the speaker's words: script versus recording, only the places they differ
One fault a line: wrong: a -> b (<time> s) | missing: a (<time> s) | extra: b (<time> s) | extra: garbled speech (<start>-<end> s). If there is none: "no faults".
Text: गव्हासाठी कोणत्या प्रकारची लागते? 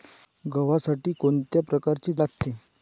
no faults